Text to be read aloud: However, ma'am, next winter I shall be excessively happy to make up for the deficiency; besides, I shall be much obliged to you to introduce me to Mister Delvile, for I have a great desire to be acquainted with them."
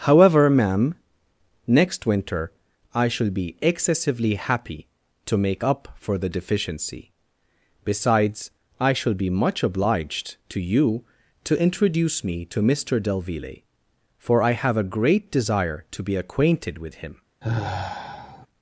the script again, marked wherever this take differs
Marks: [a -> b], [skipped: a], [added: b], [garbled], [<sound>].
However, ma'am, next winter I shall be excessively happy to make up for the deficiency; besides, I shall be much obliged to you to introduce me to Mister Delvile, for I have a great desire to be acquainted with [them." -> him] [sigh]